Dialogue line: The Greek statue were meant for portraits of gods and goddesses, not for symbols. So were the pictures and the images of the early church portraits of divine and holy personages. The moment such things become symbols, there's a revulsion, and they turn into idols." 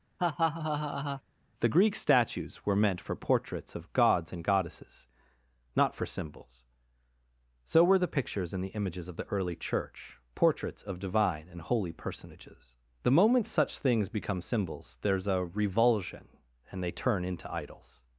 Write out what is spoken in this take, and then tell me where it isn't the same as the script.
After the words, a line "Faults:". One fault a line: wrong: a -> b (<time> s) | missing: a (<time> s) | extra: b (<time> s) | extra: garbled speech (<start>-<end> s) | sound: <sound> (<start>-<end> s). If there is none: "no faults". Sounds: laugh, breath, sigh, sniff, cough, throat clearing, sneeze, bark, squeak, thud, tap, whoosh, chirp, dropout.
The Greek statues were meant for portraits of gods and goddesses, not for symbols. So were the pictures and the images of the early church portraits of divine and holy personages. The moment such things become symbols, there's a revulsion, and they turn into idols."
Faults:
sound: laugh (0.2-1.2 s)
wrong: statue -> statues (1.9 s)